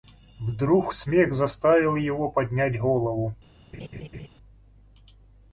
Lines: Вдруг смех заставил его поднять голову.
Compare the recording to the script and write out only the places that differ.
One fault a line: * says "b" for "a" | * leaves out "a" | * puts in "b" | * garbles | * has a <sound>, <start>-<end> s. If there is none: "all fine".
* has a laugh, 3.7-4.3 s